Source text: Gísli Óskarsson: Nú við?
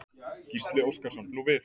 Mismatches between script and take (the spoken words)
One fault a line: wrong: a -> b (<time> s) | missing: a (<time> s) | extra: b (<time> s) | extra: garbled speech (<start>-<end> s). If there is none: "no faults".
no faults